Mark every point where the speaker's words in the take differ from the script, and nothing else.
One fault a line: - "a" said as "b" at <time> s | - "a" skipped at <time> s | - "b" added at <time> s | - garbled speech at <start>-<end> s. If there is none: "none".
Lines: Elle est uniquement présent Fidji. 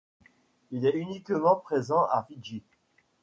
- "Elle" said as "Il" at 0.7 s
- "à" added at 2.0 s